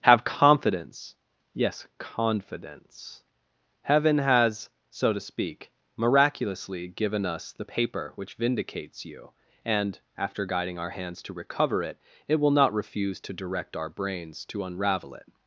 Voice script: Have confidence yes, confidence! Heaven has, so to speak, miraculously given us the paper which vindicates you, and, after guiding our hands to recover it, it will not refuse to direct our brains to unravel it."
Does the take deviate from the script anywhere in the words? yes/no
no